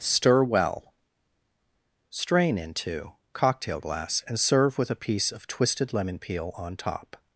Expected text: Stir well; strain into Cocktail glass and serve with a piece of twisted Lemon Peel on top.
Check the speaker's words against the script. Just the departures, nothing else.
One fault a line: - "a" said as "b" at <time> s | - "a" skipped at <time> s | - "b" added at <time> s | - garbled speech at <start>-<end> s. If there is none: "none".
none